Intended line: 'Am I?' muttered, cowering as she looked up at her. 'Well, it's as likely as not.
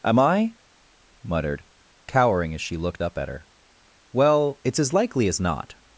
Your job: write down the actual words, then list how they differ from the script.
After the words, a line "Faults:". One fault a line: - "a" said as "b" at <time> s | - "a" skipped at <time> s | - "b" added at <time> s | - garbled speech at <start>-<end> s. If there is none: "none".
'Am I?' muttered, cowering as she looked up at her. 'Well, it's as likely as not.
Faults:
none